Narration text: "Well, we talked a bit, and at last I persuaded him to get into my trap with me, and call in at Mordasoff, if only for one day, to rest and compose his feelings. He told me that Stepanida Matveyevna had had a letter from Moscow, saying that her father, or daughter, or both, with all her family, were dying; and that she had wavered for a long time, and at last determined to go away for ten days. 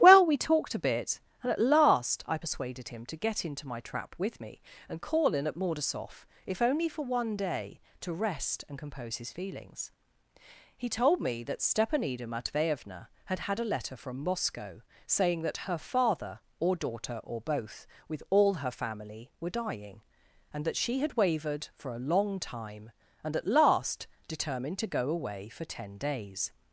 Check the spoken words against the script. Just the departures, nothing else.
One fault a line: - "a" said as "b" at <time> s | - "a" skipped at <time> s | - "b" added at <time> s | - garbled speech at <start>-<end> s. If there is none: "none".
none